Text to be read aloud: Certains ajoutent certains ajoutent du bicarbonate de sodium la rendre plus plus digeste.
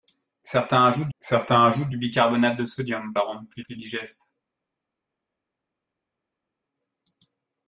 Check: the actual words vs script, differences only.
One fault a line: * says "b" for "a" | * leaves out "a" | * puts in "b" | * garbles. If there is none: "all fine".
all fine